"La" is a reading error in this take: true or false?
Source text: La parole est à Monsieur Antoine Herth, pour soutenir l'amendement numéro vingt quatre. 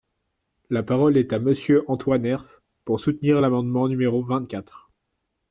false